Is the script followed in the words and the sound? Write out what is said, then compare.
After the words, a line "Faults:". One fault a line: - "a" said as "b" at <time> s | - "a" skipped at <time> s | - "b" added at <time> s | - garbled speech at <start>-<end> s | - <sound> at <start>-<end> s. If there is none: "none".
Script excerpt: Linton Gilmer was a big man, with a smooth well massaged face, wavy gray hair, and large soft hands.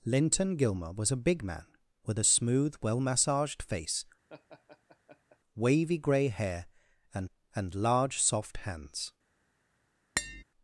Linton Gilmer was a big man, with a smooth well massaged face, wavy gray hair, and and large soft hands.
Faults:
- laugh at 4.3-5.4 s
- "and" added at 7.5 s
- tap at 10.2-10.4 s